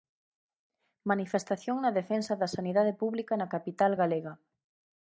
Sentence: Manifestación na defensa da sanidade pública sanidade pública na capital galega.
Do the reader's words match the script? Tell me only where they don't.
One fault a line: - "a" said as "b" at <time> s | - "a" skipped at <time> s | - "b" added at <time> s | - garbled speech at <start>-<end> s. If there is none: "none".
- "sanidade pública" skipped at 3.3 s